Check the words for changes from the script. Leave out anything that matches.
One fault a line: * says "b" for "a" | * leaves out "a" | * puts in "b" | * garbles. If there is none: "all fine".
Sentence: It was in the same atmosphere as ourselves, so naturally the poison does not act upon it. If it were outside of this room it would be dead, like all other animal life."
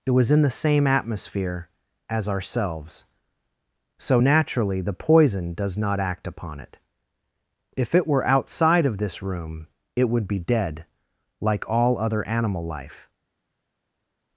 all fine